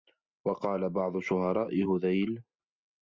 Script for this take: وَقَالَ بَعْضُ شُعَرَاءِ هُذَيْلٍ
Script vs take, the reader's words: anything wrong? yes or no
no